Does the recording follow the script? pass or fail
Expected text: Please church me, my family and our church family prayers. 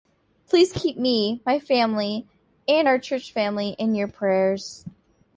fail